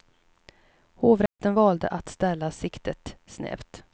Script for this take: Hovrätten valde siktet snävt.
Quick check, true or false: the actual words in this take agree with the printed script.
false